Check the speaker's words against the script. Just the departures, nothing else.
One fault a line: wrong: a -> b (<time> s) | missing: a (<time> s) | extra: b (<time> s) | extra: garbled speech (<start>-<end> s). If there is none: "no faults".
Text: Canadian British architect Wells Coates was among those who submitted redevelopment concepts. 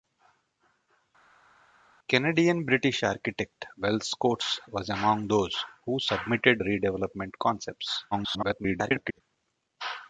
extra: garbled speech (8.1-9.2 s)